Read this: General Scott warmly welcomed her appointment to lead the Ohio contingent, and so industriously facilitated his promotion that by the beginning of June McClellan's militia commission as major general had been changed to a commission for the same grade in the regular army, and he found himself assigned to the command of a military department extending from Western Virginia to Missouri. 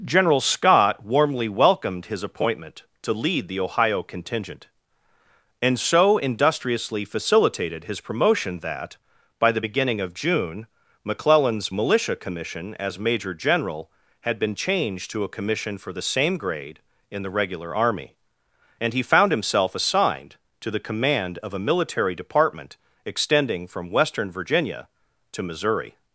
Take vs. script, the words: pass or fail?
fail